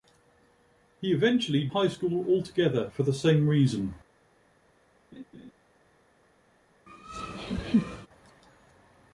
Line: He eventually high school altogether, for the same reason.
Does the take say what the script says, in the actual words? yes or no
yes